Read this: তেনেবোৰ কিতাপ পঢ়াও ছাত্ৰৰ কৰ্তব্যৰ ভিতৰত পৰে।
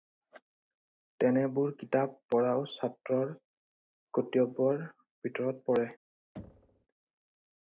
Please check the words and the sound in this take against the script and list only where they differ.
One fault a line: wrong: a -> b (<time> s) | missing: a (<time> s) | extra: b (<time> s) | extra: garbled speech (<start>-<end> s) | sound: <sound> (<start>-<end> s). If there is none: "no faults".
sound: thud (6.4-6.9 s)